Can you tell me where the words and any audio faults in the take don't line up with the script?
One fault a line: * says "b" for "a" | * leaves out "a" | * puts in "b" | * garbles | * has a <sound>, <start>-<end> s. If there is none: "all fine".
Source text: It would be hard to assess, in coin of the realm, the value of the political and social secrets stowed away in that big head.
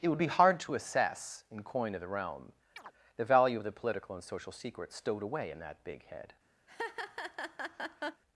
* has a chirp, 2.8-2.9 s
* has a laugh, 6.7-8.2 s